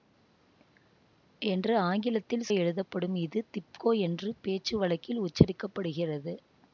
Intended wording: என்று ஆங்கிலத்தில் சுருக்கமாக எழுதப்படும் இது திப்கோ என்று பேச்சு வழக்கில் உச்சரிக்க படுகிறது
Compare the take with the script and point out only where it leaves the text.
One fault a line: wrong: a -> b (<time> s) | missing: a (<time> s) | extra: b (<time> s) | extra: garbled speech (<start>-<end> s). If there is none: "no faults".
missing: சுருக்கமாக (2.5 s)